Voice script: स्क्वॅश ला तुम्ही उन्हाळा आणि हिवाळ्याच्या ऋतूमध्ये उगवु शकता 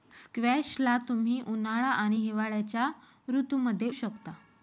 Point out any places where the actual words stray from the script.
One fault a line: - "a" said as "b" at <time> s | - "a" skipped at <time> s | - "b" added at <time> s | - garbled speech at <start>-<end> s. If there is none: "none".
- "उगवु" skipped at 3.9 s